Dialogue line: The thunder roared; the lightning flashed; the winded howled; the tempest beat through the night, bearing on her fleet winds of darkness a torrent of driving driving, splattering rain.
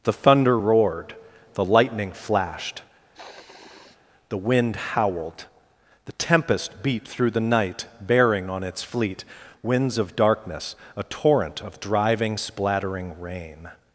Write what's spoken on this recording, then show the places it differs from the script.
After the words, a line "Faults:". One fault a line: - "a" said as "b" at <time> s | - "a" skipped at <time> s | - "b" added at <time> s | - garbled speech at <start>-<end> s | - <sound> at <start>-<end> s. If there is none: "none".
The thunder roared; the lightning flashed; the wind howled; the tempest beat through the night, bearing on its fleet winds of darkness a torrent of driving, splattering rain.
Faults:
- sniff at 3.1-4.0 s
- "winded" said as "wind" at 4.4 s
- "her" said as "its" at 8.6 s
- "driving" skipped at 12.4 s